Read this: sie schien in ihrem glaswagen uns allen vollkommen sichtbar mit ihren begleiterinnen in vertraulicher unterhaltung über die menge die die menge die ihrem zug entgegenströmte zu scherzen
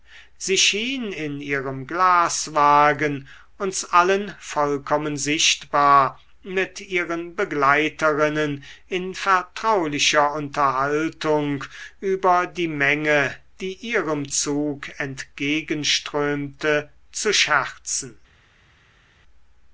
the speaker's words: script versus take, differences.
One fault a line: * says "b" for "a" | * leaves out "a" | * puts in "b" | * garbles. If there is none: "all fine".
* leaves out "die menge die"